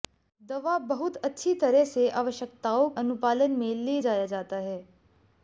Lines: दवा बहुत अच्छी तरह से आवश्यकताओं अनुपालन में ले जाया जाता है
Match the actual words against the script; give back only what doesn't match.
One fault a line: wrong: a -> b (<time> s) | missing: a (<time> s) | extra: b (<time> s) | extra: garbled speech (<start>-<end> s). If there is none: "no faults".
no faults